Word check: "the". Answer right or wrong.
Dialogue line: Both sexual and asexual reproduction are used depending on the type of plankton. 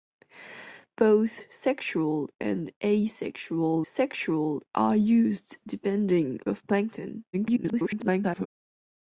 wrong